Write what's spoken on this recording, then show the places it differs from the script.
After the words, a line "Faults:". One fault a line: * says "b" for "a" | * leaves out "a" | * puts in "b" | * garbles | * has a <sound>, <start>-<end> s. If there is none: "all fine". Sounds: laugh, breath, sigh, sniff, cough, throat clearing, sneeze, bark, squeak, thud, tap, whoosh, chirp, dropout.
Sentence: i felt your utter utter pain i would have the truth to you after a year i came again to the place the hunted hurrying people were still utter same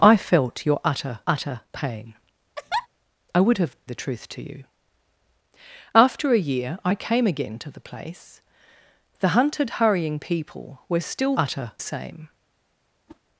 i felt your utter utter pain i would have the truth to you after a year i came again to the place the hunted hurrying people were still utter same
Faults:
* has a laugh, 2.6-2.9 s
* has a whoosh, 13.1-13.2 s